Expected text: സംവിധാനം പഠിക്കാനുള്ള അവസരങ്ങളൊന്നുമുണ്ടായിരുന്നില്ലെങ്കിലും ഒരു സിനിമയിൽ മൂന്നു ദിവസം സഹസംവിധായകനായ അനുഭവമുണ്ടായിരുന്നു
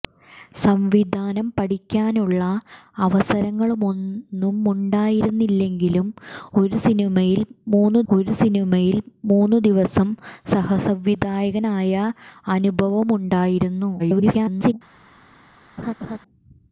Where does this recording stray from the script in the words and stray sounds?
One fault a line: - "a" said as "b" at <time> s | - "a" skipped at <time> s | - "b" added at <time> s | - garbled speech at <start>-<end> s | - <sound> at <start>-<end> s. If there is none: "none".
- "ഒരു സിനിമയിൽ മൂന്നു" added at 8.1 s
- garbled speech at 14.0-14.7 s
- laugh at 15.8-16.2 s